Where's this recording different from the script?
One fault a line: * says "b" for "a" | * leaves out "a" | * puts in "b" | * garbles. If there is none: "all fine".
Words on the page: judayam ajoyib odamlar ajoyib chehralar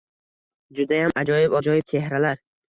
* leaves out "odamlar"